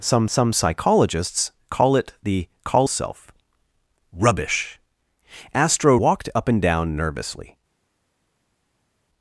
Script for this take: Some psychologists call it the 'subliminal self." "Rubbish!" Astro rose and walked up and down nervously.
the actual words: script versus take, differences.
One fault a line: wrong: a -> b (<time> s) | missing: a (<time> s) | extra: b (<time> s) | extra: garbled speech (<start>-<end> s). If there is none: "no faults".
extra: some (0.3 s)
wrong: subliminal -> call (2.6 s)
missing: rose and (6.0 s)